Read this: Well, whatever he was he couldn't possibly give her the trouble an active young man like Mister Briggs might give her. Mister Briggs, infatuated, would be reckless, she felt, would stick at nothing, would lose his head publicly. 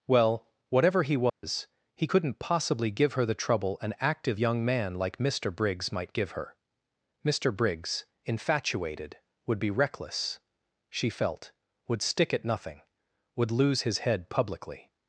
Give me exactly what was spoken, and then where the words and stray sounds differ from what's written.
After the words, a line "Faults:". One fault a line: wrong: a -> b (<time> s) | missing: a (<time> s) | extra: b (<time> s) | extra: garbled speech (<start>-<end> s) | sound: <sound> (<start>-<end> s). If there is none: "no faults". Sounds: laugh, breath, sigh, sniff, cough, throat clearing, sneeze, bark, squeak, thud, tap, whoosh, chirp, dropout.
Well, whatever he was he couldn't possibly give her the trouble an active young man like Mister Briggs might give her. Mister Briggs, infatuated, would be reckless, she felt, would stick at nothing, would lose his head publicly.
Faults:
sound: dropout (1.3-1.4 s)